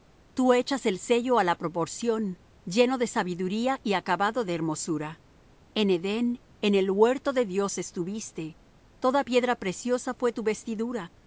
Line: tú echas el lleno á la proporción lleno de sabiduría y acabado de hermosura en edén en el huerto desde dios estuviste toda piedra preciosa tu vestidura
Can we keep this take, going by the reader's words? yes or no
no